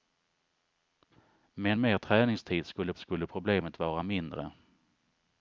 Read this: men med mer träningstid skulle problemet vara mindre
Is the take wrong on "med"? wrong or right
wrong